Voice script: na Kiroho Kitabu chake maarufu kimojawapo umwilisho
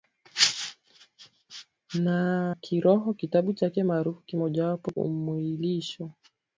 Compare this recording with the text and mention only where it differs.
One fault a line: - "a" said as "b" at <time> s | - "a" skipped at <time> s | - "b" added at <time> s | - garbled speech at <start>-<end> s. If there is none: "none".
none